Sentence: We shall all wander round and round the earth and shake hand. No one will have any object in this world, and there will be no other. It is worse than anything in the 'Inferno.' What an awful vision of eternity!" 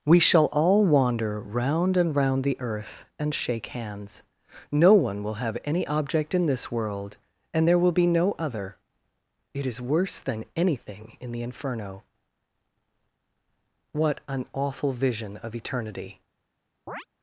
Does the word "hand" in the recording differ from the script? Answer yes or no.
yes